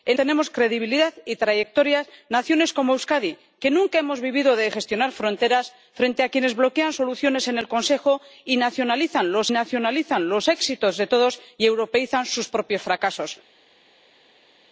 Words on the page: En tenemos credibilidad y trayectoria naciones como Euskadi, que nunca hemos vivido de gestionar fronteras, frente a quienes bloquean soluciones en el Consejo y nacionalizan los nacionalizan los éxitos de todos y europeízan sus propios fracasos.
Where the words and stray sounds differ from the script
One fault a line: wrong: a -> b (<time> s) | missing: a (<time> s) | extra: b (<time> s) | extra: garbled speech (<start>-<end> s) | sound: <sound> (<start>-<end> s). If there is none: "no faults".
no faults